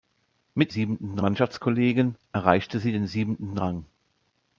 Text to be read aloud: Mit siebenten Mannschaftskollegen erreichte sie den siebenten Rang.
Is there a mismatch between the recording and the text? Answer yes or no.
no